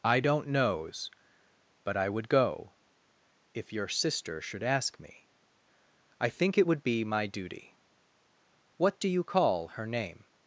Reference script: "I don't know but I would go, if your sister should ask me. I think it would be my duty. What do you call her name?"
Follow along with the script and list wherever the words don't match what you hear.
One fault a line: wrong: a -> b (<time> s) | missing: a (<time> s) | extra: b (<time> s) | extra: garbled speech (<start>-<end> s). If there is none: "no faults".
wrong: know -> knows (0.5 s)